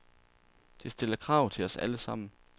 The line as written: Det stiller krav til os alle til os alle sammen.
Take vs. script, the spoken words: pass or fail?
fail